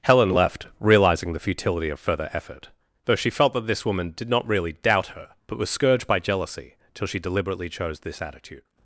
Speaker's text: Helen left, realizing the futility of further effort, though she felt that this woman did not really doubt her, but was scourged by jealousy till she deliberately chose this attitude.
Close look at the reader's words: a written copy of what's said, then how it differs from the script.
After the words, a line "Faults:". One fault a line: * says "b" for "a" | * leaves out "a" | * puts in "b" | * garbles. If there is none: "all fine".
Helen left, realizing the futility of further effort, though she felt that this woman did not really doubt her, but was scourged by jealousy till she deliberately chose this attitude.
Faults:
all fine